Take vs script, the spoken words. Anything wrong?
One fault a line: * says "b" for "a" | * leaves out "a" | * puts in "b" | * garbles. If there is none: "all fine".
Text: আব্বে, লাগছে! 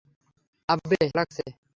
all fine